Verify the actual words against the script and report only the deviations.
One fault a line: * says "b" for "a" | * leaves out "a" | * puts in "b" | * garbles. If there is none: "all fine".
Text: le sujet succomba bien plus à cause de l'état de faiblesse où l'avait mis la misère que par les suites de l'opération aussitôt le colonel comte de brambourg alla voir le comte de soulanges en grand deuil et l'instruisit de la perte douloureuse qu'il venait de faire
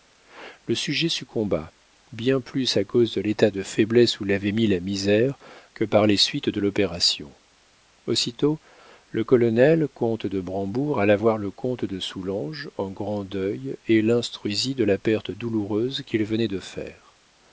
all fine